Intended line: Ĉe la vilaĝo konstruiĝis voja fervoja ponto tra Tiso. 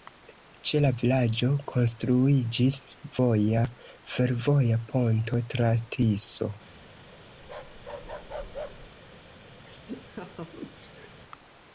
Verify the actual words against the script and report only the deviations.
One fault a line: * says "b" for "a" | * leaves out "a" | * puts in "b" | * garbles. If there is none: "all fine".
all fine